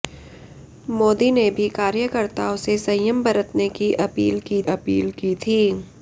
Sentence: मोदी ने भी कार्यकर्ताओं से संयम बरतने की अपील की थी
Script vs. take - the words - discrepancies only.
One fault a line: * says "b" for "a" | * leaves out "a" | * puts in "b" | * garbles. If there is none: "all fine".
* puts in "अपील की"